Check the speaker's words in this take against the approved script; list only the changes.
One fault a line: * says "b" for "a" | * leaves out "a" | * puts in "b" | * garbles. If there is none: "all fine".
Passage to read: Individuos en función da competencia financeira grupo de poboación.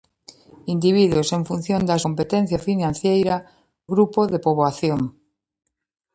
all fine